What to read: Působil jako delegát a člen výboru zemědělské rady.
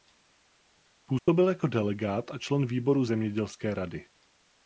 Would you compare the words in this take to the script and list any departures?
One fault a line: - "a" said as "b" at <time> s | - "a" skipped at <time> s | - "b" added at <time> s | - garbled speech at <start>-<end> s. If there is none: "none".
none